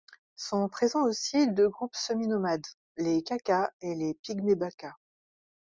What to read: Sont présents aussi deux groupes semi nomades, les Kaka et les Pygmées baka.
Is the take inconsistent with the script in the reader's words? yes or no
no